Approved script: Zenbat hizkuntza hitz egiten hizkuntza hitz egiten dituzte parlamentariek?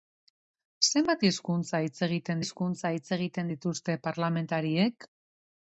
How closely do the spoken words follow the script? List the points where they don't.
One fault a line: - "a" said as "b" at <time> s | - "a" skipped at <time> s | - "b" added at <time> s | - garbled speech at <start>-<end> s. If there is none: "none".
none